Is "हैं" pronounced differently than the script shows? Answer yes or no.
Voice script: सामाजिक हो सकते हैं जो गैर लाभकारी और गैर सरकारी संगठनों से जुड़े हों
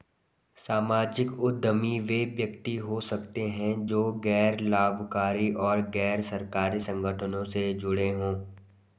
no